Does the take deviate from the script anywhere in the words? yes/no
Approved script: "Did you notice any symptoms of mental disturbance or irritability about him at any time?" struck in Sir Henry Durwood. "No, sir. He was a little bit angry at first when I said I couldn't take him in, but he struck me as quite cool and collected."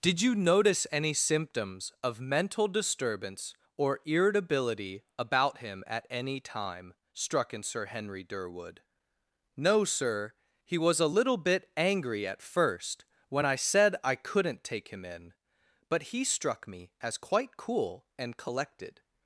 no